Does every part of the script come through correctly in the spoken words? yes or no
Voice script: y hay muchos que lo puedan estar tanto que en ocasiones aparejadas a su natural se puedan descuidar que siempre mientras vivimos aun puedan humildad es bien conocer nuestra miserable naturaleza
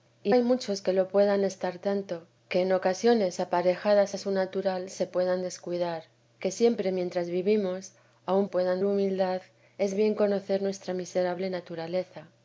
yes